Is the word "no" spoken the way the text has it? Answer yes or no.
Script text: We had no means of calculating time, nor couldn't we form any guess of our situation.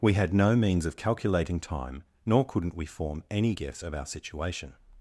yes